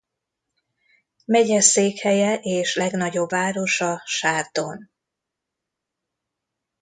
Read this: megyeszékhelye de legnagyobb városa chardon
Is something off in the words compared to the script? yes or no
yes